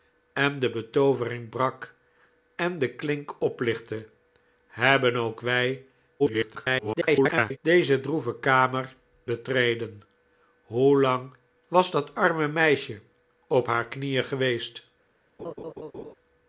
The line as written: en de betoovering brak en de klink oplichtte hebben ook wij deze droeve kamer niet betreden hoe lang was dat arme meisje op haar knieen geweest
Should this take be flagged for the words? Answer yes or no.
yes